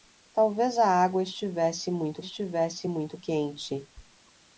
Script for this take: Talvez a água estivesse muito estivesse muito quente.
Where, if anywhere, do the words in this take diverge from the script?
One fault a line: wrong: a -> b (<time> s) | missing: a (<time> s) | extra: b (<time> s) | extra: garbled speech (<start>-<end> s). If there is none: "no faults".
no faults